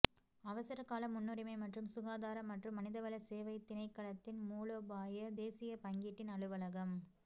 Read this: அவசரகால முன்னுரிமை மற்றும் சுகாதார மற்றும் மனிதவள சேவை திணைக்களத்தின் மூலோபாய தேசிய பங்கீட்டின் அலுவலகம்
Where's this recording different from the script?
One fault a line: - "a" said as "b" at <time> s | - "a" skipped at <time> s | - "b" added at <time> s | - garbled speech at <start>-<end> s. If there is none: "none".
none